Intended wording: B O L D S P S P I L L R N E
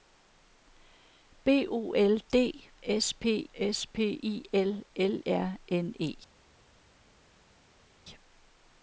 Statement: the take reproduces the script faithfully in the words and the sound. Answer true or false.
true